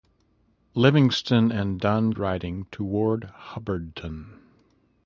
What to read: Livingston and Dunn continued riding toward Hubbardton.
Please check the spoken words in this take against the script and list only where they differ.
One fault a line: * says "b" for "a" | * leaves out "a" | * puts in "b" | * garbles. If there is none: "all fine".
* leaves out "continued"